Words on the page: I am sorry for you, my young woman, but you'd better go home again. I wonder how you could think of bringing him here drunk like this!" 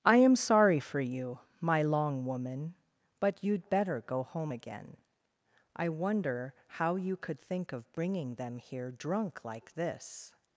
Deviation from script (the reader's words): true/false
true